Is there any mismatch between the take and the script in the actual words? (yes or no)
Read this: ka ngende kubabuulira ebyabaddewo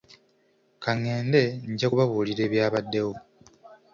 yes